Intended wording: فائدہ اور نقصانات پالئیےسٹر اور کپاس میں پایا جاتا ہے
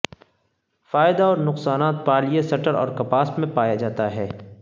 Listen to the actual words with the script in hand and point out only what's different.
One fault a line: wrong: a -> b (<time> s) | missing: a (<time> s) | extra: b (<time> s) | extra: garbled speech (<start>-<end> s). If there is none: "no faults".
no faults